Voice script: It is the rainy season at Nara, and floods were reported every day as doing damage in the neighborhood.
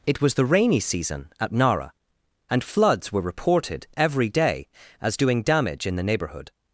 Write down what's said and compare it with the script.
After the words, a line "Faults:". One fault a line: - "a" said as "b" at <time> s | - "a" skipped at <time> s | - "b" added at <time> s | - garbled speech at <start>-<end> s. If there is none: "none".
It was the rainy season at Nara, and floods were reported every day as doing damage in the neighborhood.
Faults:
- "is" said as "was" at 0.2 s